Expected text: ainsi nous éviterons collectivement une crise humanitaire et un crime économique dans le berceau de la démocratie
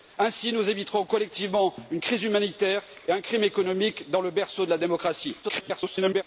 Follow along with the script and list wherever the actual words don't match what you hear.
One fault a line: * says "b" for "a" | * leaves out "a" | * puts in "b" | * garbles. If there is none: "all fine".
* garbles